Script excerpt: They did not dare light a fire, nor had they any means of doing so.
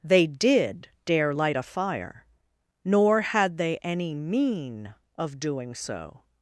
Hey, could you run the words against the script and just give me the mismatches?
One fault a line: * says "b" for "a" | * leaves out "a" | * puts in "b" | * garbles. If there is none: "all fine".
* leaves out "not"
* says "mean" for "means"